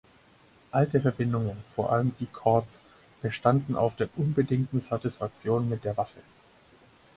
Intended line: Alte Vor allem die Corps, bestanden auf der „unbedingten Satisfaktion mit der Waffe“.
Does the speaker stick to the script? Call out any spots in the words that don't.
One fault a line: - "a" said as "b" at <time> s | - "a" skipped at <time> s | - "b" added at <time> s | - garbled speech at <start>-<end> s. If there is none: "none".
- "Verbindungen" added at 1.0 s